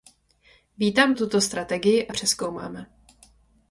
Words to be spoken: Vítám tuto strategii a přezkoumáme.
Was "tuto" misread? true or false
false